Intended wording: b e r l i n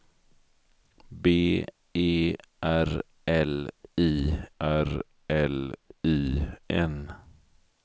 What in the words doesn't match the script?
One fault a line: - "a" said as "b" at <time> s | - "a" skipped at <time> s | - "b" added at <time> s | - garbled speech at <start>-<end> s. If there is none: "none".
- "r l i" added at 4.6 s